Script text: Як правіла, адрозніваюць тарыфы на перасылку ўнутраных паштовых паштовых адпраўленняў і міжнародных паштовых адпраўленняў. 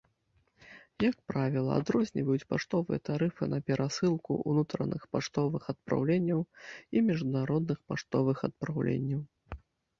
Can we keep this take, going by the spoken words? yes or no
no